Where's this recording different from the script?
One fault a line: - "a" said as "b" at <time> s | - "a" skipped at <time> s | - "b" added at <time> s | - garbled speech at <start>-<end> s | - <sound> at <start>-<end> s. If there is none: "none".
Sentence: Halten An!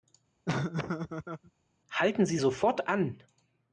- laugh at 0.5-1.5 s
- "Sie sofort" added at 2.2 s